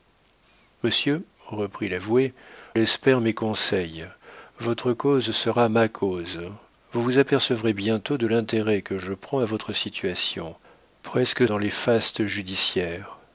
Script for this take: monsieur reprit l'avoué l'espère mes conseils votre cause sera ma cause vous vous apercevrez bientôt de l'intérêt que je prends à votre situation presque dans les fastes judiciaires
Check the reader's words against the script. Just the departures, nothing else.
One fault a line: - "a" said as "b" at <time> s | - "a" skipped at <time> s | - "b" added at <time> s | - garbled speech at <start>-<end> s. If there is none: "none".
none